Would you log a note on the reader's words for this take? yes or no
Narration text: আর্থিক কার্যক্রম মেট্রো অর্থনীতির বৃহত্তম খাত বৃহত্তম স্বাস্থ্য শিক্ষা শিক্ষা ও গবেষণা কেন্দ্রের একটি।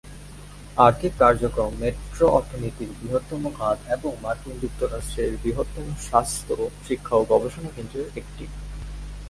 yes